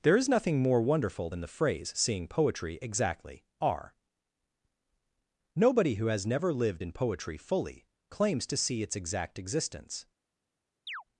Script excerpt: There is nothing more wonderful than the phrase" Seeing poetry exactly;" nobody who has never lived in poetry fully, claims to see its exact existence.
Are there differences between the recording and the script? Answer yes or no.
yes